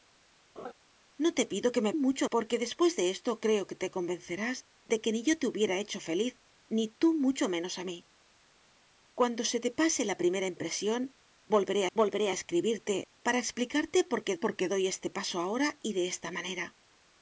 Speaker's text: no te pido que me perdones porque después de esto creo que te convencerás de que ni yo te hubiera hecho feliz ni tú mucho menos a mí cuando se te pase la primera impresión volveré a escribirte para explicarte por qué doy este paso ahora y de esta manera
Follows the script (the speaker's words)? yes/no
no